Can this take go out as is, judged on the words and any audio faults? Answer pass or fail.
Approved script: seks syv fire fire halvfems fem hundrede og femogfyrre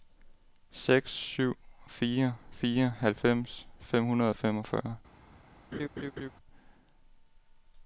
fail